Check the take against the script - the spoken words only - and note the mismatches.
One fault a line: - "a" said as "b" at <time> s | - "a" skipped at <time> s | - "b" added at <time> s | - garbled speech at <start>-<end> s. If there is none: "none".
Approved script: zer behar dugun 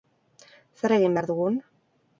- "egin" added at 1.0 s